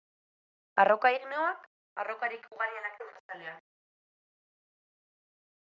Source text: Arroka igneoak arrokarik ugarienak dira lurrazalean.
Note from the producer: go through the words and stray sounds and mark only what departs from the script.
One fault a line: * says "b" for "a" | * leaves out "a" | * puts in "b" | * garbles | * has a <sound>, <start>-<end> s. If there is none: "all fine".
* leaves out "dira"